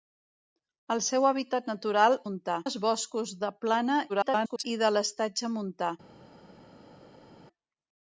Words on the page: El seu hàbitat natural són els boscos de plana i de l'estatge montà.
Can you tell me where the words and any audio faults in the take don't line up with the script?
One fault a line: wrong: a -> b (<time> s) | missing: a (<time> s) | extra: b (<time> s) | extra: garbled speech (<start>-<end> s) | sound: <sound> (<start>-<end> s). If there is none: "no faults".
wrong: són -> montà (2.2 s)
extra: garbled speech (4.1-4.6 s)